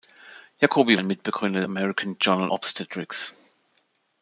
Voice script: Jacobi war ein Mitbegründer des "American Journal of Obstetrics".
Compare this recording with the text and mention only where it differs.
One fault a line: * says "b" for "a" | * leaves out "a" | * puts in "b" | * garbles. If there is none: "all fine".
* leaves out "war"
* leaves out "des"
* leaves out "of"